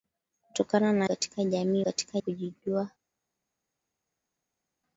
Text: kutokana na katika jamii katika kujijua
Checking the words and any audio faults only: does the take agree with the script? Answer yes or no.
yes